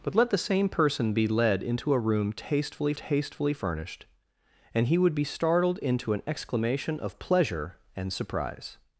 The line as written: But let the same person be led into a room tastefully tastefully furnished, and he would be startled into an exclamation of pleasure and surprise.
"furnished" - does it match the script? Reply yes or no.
yes